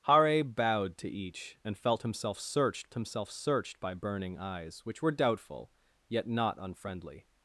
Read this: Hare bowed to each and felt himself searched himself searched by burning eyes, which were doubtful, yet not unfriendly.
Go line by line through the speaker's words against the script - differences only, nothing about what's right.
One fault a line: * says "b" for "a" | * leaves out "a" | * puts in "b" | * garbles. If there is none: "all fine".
all fine